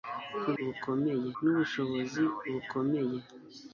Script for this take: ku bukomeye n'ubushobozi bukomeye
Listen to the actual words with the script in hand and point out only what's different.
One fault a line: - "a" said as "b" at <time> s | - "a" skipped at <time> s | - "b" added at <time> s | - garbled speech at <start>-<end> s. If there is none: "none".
none